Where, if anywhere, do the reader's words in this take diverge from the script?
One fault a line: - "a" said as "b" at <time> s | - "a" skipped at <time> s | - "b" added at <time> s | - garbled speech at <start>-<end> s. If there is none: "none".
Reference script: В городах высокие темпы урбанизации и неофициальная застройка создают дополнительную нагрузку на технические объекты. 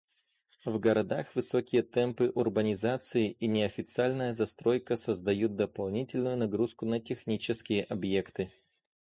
none